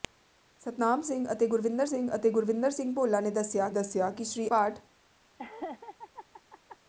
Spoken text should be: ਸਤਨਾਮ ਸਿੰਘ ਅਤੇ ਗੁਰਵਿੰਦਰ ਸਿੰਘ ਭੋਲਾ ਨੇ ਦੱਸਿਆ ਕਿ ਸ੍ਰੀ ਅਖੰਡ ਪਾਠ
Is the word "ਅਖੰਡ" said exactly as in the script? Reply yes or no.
no